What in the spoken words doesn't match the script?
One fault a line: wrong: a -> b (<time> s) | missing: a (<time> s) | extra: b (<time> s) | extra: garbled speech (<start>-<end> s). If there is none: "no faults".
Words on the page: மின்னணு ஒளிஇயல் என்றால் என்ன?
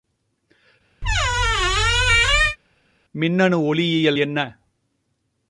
missing: என்றால் (4.2 s)